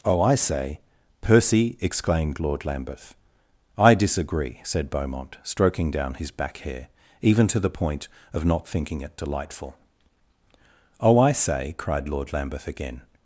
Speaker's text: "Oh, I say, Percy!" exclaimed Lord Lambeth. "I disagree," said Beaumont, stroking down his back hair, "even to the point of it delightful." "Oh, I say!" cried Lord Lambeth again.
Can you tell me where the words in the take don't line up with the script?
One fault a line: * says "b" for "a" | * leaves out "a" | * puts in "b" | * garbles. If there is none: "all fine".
* puts in "not thinking"